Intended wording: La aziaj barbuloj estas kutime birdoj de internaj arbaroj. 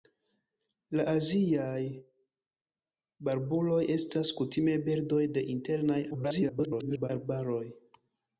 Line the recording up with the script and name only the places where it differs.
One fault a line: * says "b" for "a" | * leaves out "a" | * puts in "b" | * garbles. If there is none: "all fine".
* garbles